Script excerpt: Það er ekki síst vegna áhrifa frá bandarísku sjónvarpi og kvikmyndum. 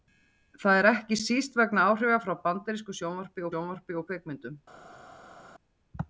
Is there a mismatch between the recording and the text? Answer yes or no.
yes